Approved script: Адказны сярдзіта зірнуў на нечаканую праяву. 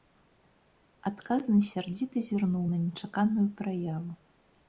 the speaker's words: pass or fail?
pass